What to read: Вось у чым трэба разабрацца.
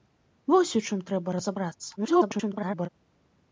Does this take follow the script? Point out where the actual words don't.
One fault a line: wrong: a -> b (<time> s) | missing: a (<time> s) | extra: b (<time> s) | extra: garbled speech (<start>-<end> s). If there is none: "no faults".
extra: garbled speech (2.0-2.9 s)